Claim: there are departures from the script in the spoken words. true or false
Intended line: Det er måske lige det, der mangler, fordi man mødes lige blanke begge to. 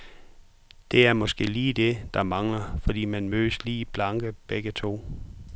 false